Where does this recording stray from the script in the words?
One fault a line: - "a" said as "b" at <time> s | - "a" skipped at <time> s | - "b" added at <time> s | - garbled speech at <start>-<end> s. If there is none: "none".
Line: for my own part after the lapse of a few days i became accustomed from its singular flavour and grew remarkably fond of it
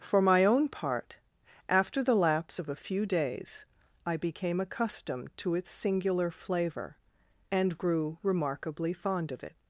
- "from" said as "to" at 5.4 s